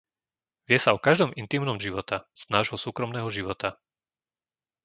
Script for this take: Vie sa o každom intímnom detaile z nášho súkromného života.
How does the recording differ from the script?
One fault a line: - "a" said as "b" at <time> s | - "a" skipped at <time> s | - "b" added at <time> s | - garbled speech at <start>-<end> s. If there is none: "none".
- "detaile" said as "života" at 1.8 s